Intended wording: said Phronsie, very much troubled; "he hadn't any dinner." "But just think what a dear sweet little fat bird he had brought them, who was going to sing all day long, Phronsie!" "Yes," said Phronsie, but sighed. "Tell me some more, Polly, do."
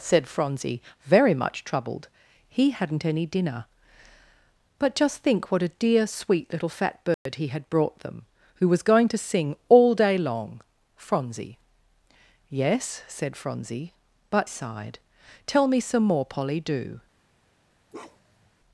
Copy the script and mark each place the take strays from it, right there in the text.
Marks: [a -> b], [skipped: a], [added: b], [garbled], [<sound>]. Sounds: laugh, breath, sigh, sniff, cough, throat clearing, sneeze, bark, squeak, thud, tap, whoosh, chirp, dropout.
said Phronsie, very much troubled; "he hadn't any dinner." "But just think what a dear sweet little fat bird [dropout] he had brought them, who was going to sing all day long, Phronsie!" "Yes," said Phronsie, but sighed. "Tell me some more, Polly, do." [bark]